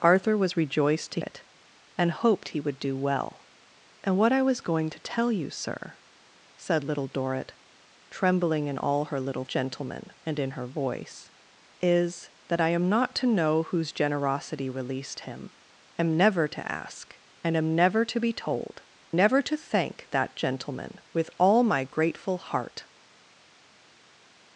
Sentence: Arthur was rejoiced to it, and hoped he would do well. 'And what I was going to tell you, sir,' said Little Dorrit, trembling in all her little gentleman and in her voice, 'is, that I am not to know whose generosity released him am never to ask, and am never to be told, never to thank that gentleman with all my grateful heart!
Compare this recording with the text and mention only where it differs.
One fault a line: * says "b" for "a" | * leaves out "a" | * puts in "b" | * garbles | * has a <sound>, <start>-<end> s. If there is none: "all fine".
all fine